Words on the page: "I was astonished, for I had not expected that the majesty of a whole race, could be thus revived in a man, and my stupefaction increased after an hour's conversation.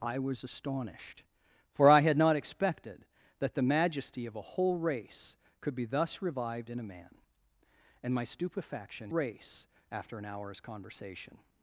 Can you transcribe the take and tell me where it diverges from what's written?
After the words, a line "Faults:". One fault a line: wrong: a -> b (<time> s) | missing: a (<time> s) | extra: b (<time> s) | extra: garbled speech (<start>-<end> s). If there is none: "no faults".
"I was astonished, for I had not expected that the majesty of a whole race, could be thus revived in a man, and my stupefaction race after an hour's conversation.
Faults:
wrong: increased -> race (9.1 s)